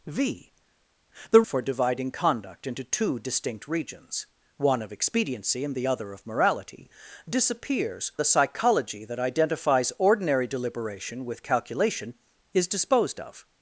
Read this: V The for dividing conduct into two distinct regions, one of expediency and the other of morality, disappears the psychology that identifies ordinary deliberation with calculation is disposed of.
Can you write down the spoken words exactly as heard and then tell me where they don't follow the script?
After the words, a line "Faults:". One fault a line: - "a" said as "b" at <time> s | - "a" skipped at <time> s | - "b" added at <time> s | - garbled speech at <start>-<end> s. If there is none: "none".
V The for dividing conduct into two distinct regions, one of expediency and the other of morality, disappears the psychology that identifies ordinary deliberation with calculation is disposed of.
Faults:
none